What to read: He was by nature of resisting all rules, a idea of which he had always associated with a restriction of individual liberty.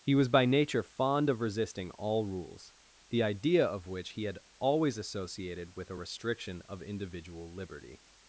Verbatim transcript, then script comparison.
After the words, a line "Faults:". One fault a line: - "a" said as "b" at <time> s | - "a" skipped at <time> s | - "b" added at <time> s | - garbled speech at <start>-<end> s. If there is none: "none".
He was by nature fond of resisting all rules, the idea of which he had always associated with a restriction of individual liberty.
Faults:
- "fond" added at 0.8 s
- "a" said as "the" at 3.1 s